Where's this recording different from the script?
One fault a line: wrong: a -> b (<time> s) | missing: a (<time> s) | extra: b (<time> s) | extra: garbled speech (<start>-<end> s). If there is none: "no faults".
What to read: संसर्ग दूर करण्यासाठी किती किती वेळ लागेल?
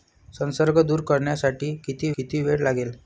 no faults